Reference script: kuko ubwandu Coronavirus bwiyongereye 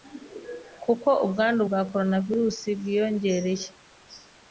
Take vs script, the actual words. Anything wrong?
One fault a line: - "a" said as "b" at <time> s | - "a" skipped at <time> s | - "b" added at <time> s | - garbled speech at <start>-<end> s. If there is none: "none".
- "bwa" added at 1.7 s